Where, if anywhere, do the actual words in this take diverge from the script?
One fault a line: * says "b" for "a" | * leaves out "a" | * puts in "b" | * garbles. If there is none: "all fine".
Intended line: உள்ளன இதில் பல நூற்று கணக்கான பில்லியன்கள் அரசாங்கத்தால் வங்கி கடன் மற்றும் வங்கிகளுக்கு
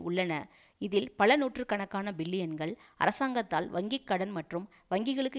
all fine